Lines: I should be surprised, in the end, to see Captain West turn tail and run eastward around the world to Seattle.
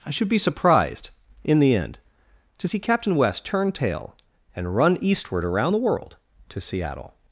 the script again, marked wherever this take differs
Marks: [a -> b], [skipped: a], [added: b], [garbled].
I should be surprised, in the end, to see Captain West turn tail and run eastward around the world to Seattle.